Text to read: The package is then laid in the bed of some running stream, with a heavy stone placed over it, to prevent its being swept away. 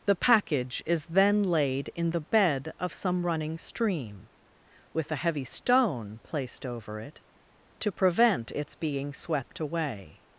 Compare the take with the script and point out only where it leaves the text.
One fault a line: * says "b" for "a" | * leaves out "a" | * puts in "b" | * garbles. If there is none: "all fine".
all fine